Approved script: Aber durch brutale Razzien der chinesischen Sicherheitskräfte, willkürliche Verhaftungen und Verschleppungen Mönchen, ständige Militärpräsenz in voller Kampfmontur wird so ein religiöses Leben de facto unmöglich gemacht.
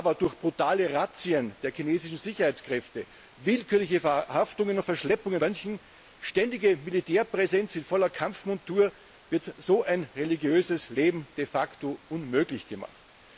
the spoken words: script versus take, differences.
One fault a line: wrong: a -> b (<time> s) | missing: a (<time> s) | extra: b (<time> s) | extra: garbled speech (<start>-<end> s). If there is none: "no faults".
no faults